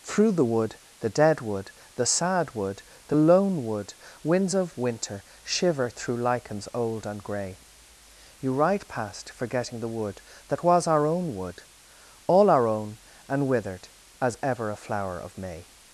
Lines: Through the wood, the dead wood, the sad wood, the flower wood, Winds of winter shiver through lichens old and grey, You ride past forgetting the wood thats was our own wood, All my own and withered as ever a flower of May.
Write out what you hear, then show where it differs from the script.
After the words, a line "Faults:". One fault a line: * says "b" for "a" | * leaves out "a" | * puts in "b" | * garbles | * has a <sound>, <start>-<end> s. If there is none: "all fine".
Through the wood, the dead wood, the sad wood, the lone wood, Winds of winter shiver through lichens old and grey, You ride past forgetting the wood that was our own wood, All our own and withered as ever a flower of May.
Faults:
* says "lone" for "flower"
* says "that" for "thats"
* says "our" for "my"